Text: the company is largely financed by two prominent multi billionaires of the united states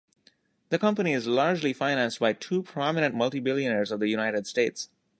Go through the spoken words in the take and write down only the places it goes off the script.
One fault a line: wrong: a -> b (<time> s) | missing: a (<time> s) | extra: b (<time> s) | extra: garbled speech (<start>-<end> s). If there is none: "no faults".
no faults